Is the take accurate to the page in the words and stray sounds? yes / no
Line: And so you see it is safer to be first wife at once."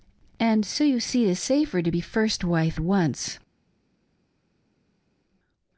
no